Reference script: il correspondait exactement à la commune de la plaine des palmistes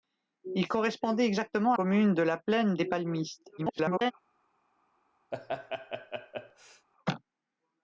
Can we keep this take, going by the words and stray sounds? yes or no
no